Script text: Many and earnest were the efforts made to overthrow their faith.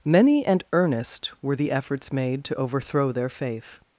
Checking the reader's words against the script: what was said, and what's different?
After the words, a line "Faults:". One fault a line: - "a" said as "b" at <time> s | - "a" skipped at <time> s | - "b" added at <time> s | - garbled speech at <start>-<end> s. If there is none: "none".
Many and earnest were the efforts made to overthrow their faith.
Faults:
none